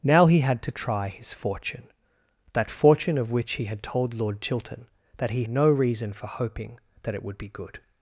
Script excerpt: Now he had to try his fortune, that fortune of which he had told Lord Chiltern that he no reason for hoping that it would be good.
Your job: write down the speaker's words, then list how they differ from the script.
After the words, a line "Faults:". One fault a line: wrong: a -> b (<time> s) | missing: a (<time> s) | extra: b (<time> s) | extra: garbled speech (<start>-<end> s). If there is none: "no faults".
Now he had to try his fortune, that fortune of which he had told Lord Chiltern that he no reason for hoping that it would be good.
Faults:
no faults